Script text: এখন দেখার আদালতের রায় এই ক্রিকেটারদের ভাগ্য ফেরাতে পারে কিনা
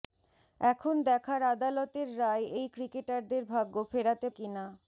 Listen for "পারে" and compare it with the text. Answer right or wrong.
wrong